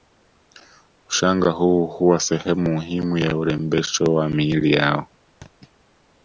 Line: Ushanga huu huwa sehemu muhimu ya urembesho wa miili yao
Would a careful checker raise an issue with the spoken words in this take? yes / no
no